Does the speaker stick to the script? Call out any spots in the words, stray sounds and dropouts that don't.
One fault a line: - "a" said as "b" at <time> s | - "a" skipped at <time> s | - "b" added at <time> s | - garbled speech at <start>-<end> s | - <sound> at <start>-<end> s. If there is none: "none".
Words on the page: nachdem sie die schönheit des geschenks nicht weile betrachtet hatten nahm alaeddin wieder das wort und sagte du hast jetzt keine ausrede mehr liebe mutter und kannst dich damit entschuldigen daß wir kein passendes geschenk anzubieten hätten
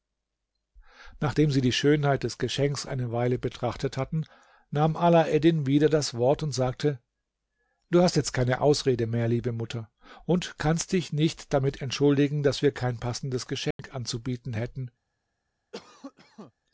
- "nicht" said as "eine" at 2.9 s
- "nicht" added at 11.1 s
- dropout at 13.7-13.8 s
- cough at 15.7-16.5 s